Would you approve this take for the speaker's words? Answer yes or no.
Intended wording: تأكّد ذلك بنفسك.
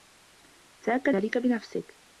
yes